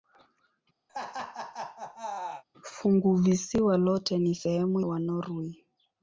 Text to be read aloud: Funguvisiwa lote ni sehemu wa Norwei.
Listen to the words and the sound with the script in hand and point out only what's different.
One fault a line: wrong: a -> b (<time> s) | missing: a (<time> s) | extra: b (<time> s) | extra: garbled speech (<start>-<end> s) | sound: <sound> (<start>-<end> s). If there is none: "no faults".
sound: laugh (0.9-2.4 s)